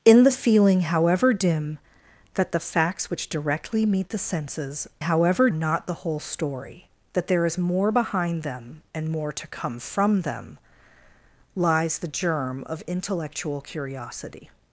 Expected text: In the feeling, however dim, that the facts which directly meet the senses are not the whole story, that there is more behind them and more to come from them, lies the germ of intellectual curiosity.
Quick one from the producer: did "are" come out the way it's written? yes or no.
no